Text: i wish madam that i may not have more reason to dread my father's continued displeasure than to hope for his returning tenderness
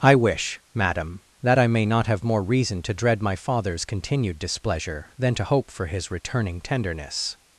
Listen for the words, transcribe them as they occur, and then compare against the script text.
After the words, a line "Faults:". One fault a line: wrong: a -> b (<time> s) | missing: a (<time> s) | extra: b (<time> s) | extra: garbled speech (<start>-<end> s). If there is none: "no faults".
i wish madam that i may not have more reason to dread my father's continued displeasure than to hope for his returning tenderness
Faults:
no faults